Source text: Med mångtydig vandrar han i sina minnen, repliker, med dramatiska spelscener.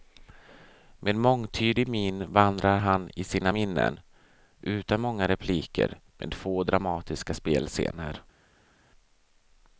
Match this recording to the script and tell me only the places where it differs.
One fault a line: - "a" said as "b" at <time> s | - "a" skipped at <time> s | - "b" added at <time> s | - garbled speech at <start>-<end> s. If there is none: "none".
- "min" added at 1.9 s
- "utan många" added at 4.6 s
- "få" added at 6.3 s